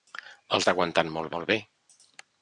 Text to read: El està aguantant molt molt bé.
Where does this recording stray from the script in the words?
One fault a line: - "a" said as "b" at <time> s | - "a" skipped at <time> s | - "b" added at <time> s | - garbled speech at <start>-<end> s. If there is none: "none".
none